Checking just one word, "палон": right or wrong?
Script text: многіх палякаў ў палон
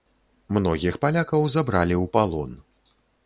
right